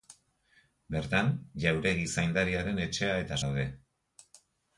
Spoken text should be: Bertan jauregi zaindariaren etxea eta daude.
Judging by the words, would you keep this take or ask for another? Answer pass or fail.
pass